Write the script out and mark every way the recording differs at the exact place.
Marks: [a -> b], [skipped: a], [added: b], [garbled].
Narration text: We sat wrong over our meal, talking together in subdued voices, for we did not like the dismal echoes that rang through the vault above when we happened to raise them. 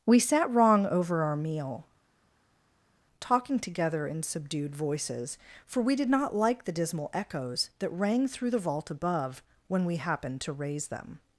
We sat wrong over our meal, talking together in subdued voices, for we did not like the dismal echoes that rang through the vault above when we happened to raise them.